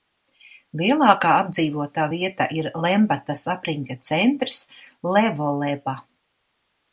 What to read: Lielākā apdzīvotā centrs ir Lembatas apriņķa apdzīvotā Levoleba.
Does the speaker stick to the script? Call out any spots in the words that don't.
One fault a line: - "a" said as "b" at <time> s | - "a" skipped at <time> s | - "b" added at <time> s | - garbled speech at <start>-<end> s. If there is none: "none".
- "centrs" said as "vieta" at 2.1 s
- "apdzīvotā" said as "centrs" at 4.1 s